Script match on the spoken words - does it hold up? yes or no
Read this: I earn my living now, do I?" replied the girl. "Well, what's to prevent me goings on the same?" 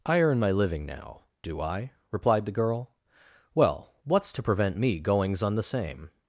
yes